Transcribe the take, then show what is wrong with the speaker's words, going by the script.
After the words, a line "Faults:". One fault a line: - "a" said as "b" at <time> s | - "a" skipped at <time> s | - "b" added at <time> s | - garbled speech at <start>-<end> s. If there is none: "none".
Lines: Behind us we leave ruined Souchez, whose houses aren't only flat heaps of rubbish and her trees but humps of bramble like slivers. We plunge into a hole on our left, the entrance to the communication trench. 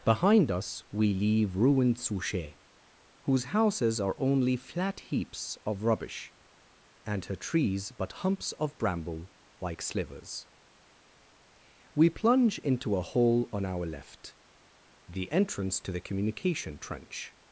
Behind us we leave ruined Souchez, whose houses are only flat heaps of rubbish and her trees but humps of bramble like slivers. We plunge into a hole on our left, the entrance to the communication trench.
Faults:
- "aren't" said as "are" at 4.0 s